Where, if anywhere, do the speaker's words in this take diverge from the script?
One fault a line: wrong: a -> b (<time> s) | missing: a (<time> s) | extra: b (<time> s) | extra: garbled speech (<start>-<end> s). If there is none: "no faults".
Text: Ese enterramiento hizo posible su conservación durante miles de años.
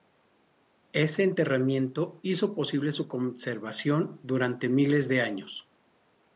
no faults